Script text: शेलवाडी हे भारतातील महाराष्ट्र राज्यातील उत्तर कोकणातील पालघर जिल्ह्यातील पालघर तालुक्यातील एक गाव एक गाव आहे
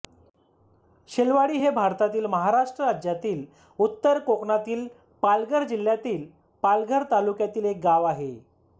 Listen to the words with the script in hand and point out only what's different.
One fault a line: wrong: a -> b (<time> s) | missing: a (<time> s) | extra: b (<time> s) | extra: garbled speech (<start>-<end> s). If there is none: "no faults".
missing: एक गाव (8.0 s)